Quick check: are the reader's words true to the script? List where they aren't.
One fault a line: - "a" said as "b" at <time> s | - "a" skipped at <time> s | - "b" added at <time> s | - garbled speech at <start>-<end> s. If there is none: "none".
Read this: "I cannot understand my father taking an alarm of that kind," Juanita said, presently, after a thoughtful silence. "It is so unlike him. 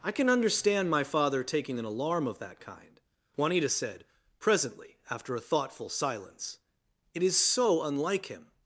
- "cannot" said as "can" at 0.1 s